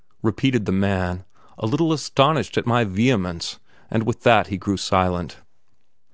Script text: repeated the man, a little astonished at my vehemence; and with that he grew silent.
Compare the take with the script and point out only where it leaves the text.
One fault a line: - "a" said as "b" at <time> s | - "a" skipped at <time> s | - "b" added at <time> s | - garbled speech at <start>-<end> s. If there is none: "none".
none